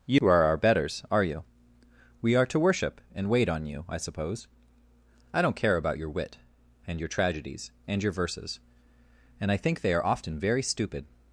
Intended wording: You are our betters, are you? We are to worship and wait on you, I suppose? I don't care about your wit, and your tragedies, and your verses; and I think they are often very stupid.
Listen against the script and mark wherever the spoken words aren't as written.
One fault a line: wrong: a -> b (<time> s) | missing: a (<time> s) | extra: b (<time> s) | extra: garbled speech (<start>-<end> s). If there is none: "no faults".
no faults